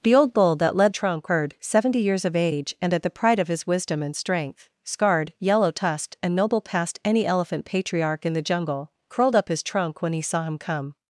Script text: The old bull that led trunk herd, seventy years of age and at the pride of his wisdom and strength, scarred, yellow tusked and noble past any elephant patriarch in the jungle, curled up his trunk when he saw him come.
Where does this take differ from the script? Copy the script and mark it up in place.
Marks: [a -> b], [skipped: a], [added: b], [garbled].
The old bull that led trunk herd, seventy years of age and at the pride of his wisdom and strength, scarred, yellow tusked and noble past any elephant patriarch in the jungle, curled up his trunk when he saw him come.